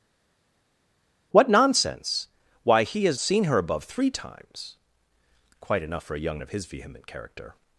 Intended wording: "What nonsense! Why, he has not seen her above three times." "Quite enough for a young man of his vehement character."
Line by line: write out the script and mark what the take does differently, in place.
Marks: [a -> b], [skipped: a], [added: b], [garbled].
"What nonsense! Why, he has [skipped: not] seen her above three times." "Quite enough for a young [skipped: man] of his vehement character."